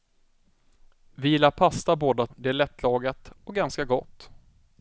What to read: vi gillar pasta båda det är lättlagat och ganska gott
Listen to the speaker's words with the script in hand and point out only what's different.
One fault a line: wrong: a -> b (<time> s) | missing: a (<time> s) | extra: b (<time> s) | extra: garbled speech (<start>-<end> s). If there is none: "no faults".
no faults